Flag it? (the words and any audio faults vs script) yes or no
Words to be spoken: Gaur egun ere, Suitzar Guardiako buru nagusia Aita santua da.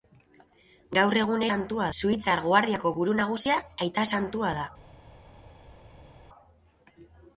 yes